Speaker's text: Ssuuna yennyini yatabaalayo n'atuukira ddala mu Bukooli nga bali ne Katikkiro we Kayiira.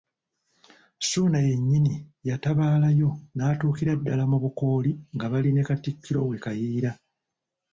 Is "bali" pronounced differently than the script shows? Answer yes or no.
no